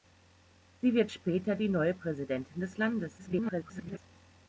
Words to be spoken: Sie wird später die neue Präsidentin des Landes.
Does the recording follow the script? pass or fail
fail